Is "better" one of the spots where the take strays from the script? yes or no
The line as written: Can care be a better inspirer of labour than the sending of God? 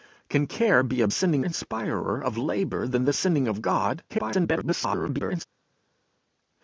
yes